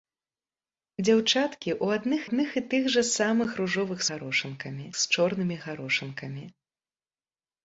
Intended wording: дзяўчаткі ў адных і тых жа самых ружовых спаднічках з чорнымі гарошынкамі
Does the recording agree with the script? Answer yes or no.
no